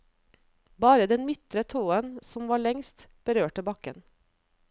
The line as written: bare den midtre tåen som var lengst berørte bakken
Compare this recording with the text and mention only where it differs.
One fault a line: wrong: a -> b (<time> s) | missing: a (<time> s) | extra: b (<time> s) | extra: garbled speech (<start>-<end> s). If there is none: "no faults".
no faults